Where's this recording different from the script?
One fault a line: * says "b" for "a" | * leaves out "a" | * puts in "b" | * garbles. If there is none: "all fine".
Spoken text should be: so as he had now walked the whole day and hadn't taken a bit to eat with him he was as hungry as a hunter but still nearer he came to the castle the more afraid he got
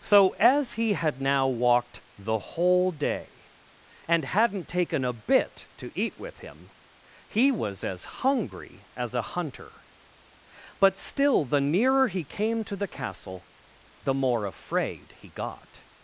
* puts in "the"